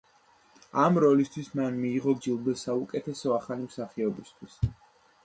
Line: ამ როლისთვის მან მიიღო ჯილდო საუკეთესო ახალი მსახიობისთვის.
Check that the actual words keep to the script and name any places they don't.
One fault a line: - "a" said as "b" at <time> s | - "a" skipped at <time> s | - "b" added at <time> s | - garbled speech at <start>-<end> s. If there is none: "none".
none